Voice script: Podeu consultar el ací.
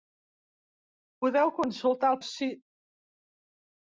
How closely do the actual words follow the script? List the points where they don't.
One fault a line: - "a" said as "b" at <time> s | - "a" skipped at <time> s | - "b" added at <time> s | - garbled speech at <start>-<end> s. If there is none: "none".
none